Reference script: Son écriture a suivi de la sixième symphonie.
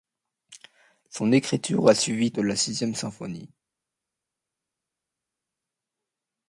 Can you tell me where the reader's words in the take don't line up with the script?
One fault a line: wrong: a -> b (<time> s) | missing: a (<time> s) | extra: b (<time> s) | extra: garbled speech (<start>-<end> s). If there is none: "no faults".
no faults